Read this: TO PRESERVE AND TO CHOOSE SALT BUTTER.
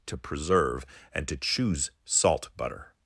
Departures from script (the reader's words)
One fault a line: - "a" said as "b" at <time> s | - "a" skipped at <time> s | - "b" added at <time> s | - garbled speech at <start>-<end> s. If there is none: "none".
none